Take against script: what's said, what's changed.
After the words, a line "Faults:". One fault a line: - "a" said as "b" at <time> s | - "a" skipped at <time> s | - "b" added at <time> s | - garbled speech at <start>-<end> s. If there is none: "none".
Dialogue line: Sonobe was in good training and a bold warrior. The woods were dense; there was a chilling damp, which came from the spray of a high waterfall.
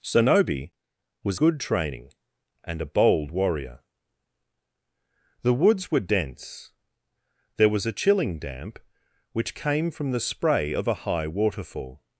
Sonobe was good training and a bold warrior. The woods were dense; there was a chilling damp, which came from the spray of a high waterfall.
Faults:
- "in" skipped at 1.4 s